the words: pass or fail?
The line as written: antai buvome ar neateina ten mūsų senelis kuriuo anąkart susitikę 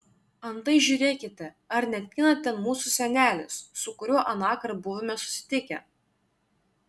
fail